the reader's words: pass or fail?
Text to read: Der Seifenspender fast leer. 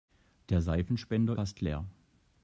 pass